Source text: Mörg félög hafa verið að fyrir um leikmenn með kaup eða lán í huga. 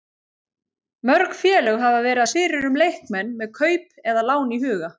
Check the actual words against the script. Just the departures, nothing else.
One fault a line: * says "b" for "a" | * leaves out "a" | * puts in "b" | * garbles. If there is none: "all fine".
all fine